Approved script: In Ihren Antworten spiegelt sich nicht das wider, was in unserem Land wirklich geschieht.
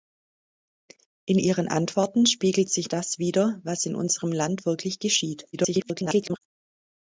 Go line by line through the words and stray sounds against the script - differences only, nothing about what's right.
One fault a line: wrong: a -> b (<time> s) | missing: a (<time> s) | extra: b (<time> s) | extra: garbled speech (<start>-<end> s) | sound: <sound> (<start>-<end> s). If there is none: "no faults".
missing: nicht (2.9 s)
extra: garbled speech (5.5-6.4 s)